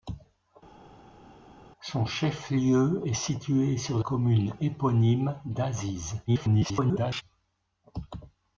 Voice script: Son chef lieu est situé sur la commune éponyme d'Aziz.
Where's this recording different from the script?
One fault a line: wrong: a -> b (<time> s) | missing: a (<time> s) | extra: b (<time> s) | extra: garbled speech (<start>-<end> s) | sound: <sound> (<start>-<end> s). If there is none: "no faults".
missing: la (4.0 s)
extra: garbled speech (6.3-7.2 s)